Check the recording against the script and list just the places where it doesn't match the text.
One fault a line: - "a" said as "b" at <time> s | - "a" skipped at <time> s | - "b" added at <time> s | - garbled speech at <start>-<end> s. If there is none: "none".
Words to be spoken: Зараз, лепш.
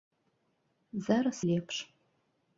none